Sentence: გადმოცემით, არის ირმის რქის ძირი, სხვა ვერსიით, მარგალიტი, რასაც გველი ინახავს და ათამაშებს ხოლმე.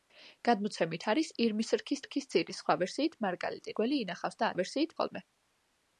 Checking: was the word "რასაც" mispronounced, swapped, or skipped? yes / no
yes